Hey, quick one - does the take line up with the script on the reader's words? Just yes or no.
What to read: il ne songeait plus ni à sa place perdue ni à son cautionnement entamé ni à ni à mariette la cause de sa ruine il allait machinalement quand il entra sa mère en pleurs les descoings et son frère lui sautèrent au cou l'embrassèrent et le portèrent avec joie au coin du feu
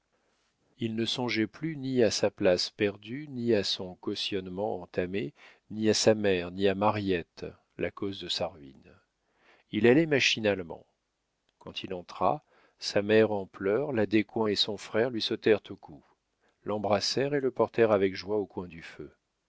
no